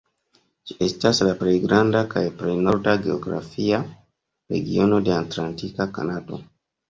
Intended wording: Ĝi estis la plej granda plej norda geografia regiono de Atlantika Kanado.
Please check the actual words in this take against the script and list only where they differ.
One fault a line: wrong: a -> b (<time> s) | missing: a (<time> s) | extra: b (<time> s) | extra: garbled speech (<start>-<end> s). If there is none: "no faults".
wrong: estis -> estas (0.8 s)
extra: kaj (2.1 s)